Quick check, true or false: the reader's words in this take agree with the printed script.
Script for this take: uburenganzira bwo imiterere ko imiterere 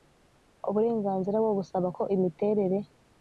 false